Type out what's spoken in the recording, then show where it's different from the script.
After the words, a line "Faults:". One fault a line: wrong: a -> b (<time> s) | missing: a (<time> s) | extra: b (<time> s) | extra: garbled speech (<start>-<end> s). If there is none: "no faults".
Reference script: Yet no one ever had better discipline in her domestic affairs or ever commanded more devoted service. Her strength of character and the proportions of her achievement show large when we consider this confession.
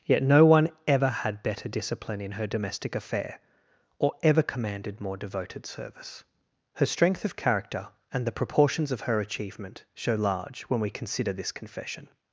Yet no one ever had better discipline in her domestic affair or ever commanded more devoted service. Her strength of character and the proportions of her achievement show large when we consider this confession.
Faults:
wrong: affairs -> affair (2.9 s)